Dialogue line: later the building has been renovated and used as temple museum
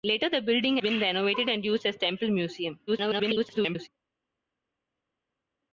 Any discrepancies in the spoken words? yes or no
yes